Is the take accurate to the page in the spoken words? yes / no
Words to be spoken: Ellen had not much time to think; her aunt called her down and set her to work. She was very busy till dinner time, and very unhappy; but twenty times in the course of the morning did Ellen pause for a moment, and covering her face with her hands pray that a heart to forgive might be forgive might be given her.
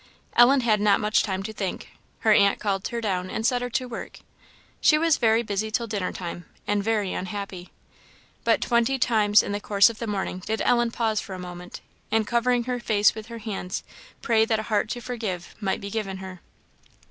no